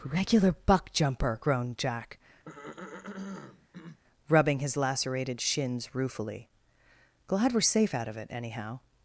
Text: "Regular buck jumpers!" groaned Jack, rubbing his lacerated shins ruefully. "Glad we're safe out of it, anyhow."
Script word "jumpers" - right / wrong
wrong